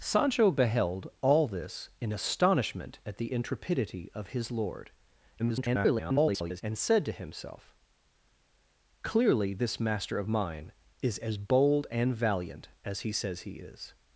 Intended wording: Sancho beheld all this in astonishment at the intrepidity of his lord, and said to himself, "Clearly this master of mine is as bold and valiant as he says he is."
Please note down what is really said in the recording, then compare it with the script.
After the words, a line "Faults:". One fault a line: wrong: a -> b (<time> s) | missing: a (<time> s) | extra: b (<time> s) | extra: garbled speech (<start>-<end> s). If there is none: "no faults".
Sancho beheld all this in astonishment at the intrepidity of his lord, [garbled] and said to himself, "Clearly this master of mine is as bold and valiant as he says he is."
Faults:
extra: garbled speech (5.4-6.6 s)